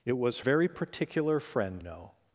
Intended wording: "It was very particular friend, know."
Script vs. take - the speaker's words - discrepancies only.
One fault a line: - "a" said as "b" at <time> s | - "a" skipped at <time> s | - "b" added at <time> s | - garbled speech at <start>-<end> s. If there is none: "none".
none